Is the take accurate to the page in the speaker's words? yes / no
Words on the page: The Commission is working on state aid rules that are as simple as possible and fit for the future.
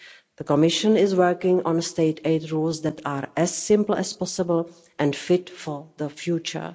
yes